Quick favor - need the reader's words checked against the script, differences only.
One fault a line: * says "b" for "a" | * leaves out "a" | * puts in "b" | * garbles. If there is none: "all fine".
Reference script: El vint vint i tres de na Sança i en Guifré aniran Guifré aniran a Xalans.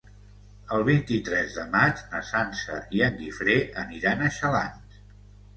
* leaves out "vint"
* puts in "maig"
* leaves out "Guifré aniran"